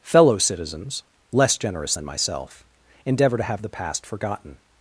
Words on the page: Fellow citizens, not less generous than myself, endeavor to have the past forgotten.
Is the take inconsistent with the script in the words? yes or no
yes